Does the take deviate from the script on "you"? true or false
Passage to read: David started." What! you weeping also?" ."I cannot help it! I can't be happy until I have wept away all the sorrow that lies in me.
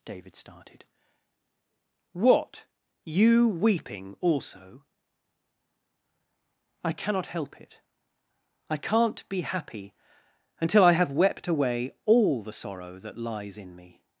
false